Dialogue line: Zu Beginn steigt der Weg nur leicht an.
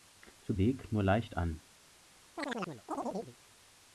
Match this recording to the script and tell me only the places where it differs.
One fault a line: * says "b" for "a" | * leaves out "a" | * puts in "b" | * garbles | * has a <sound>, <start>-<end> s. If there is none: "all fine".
* leaves out "Beginn steigt der"
* has a chirp, 2.4-3.4 s